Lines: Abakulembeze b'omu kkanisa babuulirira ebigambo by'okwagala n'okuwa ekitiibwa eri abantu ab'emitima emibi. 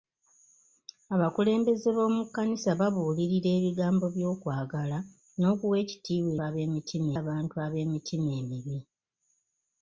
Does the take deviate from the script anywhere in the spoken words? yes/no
yes